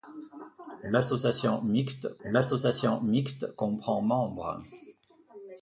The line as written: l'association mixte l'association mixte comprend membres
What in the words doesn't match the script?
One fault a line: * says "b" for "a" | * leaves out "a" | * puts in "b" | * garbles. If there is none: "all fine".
all fine